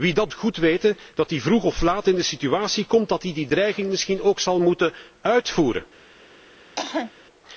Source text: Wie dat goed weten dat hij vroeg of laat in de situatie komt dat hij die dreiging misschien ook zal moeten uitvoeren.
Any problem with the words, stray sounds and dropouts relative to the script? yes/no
yes